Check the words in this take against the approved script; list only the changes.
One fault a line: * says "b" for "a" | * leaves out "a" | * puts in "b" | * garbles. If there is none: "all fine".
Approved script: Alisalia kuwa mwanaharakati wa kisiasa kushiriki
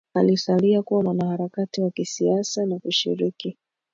* puts in "na"